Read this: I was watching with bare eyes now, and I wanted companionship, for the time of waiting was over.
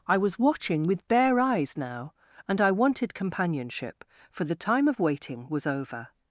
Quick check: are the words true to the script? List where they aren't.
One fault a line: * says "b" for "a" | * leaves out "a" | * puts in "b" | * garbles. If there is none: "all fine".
all fine